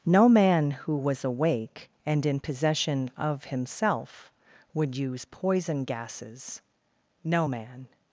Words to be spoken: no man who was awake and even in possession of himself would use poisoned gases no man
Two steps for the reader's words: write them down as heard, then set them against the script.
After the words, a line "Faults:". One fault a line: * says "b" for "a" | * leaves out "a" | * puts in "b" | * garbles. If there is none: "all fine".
no man who was awake and in possession of himself would use poison gases no man
Faults:
* leaves out "even"
* says "poison" for "poisoned"